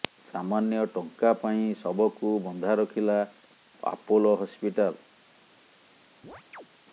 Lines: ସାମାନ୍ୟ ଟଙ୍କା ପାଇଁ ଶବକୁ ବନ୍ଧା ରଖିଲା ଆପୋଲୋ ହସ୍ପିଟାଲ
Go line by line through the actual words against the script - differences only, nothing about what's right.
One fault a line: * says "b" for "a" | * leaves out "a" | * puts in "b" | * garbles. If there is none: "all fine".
all fine